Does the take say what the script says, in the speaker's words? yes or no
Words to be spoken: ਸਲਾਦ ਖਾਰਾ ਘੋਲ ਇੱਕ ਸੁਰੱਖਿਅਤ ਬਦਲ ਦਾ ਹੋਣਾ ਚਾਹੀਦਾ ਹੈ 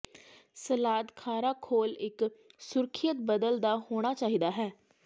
yes